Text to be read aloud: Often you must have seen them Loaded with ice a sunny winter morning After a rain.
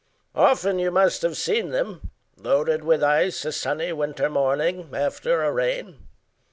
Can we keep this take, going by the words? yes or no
yes